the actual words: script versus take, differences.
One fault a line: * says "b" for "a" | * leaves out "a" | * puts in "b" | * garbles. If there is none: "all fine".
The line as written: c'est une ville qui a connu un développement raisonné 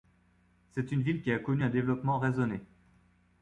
all fine